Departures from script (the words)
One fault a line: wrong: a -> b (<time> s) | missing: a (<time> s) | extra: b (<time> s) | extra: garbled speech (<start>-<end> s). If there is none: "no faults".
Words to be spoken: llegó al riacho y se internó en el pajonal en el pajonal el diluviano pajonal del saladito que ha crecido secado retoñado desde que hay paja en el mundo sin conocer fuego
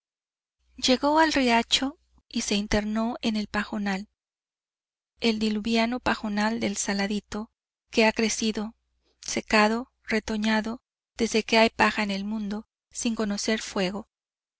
missing: en el pajonal (4.1 s)